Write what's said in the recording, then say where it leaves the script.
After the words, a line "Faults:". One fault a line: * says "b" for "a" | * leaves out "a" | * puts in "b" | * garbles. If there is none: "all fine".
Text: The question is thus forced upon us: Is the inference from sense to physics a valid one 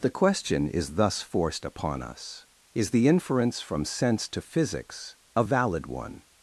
The question is thus forced upon us: Is the inference from sense to physics a valid one
Faults:
all fine